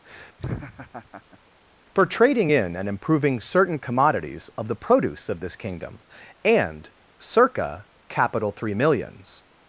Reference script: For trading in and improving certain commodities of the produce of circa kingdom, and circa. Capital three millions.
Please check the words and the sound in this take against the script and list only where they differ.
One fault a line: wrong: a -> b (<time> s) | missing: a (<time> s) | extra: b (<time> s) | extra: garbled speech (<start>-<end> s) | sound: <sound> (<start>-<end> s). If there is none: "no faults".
sound: laugh (0.4-1.4 s)
wrong: circa -> this (5.4 s)